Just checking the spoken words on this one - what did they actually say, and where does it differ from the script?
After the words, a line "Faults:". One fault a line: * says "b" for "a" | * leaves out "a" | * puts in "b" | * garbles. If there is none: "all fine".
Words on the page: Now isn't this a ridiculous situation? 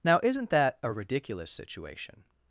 Now isn't that a ridiculous situation?
Faults:
* says "that" for "this"